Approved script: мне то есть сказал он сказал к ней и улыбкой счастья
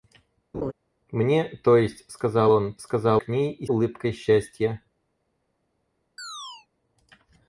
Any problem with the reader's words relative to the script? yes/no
no